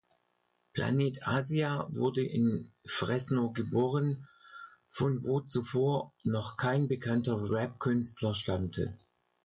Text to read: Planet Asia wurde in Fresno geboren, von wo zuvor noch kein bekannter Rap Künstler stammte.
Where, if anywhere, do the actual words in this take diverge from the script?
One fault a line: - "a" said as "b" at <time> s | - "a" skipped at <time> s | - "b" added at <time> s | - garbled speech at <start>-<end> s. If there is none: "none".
none